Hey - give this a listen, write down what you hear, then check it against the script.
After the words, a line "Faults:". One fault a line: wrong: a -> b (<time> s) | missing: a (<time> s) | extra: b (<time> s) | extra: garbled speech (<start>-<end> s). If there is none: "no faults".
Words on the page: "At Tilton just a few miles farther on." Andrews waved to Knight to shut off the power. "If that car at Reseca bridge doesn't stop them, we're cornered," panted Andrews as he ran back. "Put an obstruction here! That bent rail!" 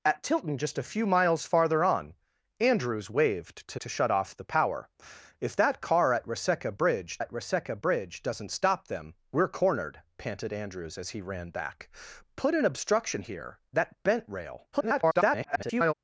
"At Tilton just a few miles farther on." Andrews waved to To shut off the power. "If that car at Reseca bridge at Reseca bridge doesn't stop them, we're cornered," panted Andrews as he ran back. "Put an obstruction here! That bent rail!" [garbled]
Faults:
missing: Knight (3.8 s)
extra: at Reseca bridge (7.2 s)
extra: garbled speech (14.7-15.9 s)